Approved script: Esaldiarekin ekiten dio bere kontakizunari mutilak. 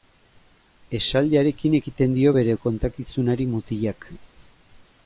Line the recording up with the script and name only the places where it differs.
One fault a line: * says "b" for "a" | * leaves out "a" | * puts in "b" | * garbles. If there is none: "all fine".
all fine